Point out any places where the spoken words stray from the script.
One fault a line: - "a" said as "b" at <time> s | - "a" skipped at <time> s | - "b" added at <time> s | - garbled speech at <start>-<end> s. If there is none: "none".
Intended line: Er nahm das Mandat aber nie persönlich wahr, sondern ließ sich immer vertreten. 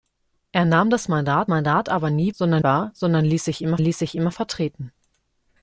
- "Mandat" added at 1.5 s
- "persönlich" said as "sondern" at 2.3 s
- "ließ sich immer" added at 3.8 s